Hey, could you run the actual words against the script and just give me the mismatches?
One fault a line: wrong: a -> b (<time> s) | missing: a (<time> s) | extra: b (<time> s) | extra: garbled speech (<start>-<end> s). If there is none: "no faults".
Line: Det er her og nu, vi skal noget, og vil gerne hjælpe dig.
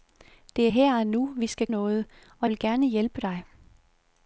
no faults